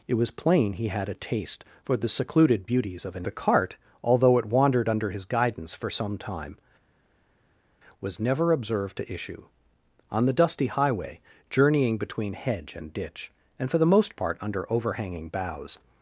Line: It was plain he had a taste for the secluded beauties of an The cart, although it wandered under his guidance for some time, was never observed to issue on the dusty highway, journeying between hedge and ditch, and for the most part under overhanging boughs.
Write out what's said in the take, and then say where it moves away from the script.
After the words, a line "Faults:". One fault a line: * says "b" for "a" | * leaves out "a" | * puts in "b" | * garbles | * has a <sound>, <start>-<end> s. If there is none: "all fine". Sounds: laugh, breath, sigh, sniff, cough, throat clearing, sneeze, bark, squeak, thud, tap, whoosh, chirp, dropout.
It was plain he had a taste for the secluded beauties of an The cart, although it wandered under his guidance for some time, was never observed to issue on the dusty highway, journeying between hedge and ditch, and for the most part under overhanging boughs.
Faults:
all fine